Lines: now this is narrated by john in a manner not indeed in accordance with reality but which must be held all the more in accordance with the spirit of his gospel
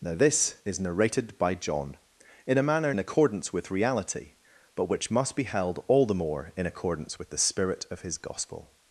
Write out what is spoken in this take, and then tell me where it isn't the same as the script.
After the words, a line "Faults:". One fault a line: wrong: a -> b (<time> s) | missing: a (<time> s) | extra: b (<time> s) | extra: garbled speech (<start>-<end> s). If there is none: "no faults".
now this is narrated by john in a manner in accordance with reality but which must be held all the more in accordance with the spirit of his gospel
Faults:
missing: not indeed (2.9 s)